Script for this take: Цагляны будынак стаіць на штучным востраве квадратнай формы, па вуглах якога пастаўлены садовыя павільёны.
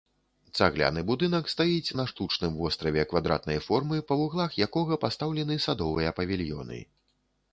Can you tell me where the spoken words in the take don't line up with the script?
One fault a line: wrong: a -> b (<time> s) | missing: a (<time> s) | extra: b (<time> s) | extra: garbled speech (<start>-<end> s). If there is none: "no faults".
no faults